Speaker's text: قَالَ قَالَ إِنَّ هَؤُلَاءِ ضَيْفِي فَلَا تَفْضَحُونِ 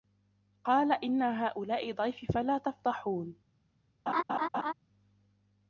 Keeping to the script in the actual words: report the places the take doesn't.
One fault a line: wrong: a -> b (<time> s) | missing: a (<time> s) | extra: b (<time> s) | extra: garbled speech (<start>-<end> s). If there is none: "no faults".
missing: قَالَ (0.9 s)